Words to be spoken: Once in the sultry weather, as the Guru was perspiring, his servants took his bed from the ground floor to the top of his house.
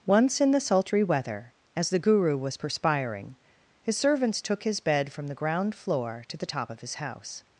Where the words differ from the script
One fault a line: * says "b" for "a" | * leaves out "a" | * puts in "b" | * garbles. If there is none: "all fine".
all fine